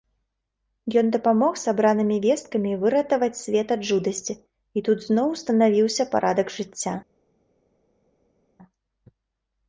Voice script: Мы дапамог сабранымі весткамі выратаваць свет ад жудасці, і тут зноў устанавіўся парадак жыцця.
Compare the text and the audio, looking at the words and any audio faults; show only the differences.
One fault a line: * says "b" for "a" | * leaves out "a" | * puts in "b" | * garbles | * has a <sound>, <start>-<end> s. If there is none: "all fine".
* says "Ён" for "Мы"